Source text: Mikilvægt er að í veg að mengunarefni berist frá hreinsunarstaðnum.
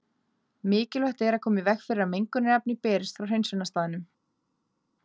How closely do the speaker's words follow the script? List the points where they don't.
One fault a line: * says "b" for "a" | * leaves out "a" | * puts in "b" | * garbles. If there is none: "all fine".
* puts in "koma"
* puts in "fyrir"